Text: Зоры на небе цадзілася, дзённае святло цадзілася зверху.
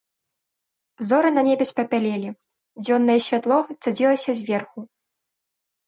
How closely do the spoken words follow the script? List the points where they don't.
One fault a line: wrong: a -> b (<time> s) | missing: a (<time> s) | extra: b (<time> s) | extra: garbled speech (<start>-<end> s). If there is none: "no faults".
wrong: цадзілася -> спапялелі (1.7 s)